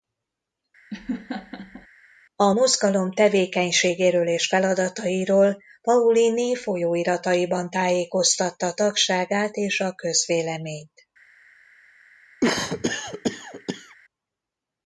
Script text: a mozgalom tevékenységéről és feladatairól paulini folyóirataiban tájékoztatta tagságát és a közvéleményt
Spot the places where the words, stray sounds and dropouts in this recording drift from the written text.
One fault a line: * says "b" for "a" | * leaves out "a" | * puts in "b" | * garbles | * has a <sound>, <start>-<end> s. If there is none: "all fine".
* has a laugh, 0.9-1.9 s
* has a cough, 12.4-14.0 s